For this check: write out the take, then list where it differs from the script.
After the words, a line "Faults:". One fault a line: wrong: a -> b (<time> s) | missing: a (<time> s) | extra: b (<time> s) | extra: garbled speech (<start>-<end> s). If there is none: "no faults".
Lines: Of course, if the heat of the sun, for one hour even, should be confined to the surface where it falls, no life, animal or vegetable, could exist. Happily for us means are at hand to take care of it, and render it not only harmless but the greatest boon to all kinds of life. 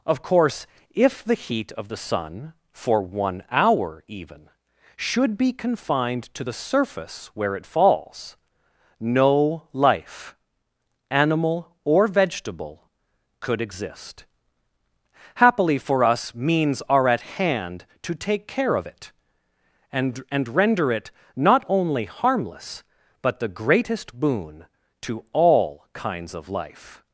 Of course, if the heat of the sun, for one hour even, should be confined to the surface where it falls, no life, animal or vegetable, could exist. Happily for us means are at hand to take care of it, and and render it not only harmless but the greatest boon to all kinds of life.
Faults:
extra: and (20.3 s)